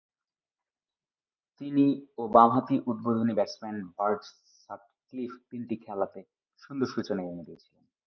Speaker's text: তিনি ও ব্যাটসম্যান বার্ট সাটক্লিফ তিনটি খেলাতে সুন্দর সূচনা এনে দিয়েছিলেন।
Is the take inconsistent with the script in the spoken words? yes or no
yes